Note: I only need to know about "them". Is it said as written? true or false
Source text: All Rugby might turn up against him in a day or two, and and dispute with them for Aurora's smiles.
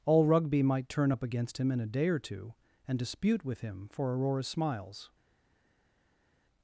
false